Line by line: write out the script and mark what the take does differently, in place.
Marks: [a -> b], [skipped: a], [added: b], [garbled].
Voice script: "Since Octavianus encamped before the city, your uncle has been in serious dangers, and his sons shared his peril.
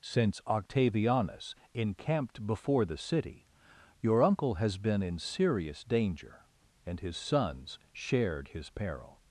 "Since Octavianus encamped before the city, your uncle has been in serious [dangers, -> danger] and his sons shared his peril.